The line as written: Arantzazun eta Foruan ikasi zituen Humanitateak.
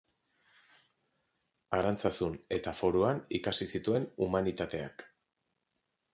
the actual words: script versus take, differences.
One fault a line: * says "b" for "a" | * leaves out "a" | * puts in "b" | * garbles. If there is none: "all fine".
all fine